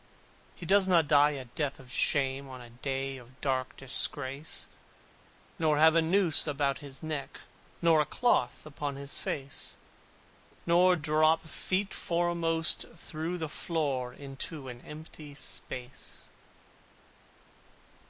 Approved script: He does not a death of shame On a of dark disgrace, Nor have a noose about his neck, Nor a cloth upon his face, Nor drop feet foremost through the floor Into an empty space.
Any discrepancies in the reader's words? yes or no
yes